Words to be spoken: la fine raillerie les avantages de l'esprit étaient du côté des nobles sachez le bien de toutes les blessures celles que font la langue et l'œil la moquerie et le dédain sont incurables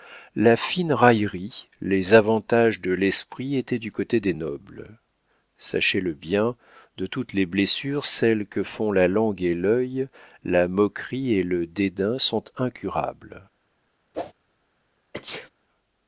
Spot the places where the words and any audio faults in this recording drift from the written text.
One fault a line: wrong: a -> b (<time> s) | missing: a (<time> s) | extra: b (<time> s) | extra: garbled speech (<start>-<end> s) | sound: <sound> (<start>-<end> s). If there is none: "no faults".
sound: whoosh (14.1-14.3 s)
sound: sneeze (15.1-15.5 s)